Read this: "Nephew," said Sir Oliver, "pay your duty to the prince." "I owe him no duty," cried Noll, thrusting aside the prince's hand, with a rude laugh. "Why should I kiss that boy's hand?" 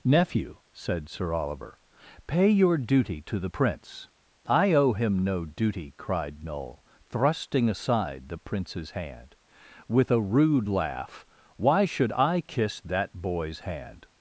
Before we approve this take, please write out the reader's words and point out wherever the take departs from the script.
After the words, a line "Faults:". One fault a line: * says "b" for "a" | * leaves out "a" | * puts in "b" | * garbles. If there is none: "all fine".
"Nephew," said Sir Oliver, "pay your duty to the prince." "I owe him no duty," cried Noll, thrusting aside the prince's hand, with a rude laugh. "Why should I kiss that boy's hand?"
Faults:
all fine